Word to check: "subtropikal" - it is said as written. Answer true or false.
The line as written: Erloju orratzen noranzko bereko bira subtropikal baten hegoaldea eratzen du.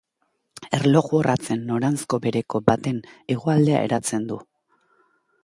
false